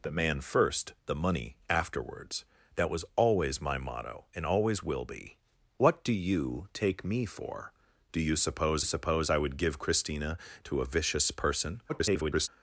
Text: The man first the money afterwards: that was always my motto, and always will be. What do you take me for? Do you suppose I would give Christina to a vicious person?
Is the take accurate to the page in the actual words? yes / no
no